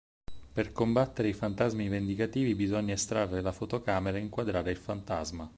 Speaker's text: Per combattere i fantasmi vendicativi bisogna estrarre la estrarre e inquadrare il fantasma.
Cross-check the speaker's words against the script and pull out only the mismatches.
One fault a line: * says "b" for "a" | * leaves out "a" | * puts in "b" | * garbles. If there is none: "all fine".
* says "fotocamera" for "estrarre"